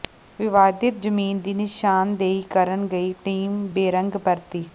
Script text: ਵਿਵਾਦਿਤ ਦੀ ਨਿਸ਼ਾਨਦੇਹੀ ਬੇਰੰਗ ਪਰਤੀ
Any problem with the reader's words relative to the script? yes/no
yes